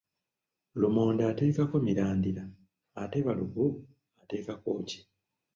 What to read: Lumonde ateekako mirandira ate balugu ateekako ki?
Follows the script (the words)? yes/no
yes